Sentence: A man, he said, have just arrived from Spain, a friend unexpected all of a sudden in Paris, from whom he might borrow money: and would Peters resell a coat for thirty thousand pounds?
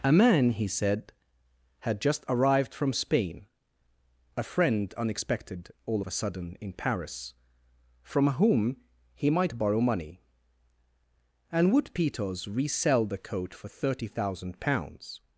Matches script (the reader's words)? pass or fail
fail